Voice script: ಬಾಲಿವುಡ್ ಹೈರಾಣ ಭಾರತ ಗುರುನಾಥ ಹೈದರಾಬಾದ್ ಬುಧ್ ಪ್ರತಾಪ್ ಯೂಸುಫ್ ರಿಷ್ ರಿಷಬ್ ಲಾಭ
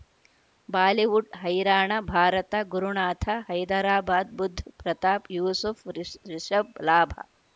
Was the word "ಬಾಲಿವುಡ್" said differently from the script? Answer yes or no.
no